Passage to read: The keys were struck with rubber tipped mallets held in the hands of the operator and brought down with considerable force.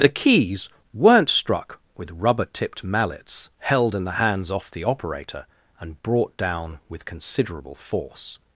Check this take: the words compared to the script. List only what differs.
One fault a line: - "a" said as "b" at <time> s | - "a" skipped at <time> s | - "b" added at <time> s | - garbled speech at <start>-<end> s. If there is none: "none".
- "were" said as "weren't" at 0.9 s
- "of" said as "off" at 4.5 s